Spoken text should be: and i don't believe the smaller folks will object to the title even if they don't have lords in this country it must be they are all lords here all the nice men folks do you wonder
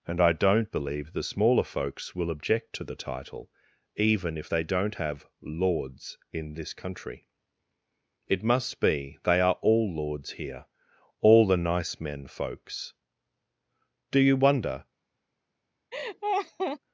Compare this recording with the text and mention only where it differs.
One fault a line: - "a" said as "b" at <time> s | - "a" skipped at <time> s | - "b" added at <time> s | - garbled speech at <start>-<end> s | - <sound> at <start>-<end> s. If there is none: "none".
- laugh at 15.9-16.8 s